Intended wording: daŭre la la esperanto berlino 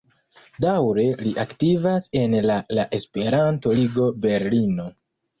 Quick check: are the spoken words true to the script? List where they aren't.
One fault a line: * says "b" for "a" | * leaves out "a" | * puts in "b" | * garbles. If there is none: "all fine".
* puts in "li aktivas en"
* puts in "ligo"